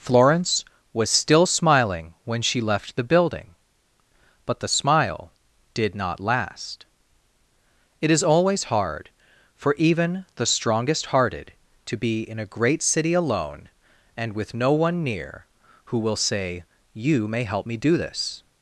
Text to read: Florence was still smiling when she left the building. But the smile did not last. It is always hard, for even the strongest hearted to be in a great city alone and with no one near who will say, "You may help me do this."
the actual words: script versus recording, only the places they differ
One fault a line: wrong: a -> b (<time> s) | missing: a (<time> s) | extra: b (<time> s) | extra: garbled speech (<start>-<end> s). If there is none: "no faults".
no faults